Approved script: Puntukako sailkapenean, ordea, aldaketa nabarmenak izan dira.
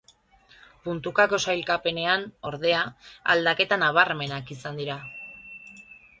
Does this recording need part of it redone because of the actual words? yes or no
no